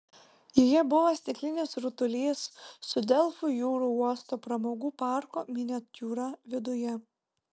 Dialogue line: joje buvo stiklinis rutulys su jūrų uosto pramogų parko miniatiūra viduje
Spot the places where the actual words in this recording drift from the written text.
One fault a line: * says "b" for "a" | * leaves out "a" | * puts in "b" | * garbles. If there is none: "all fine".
* puts in "delfų"